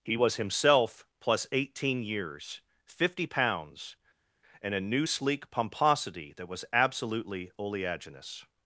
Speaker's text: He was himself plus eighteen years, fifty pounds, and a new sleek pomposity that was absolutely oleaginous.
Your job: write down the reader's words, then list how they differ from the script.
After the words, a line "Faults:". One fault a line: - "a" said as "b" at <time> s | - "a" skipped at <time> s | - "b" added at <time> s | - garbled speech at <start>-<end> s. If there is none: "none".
He was himself plus eighteen years, fifty pounds, and a new sleek pomposity that was absolutely oleaginous.
Faults:
none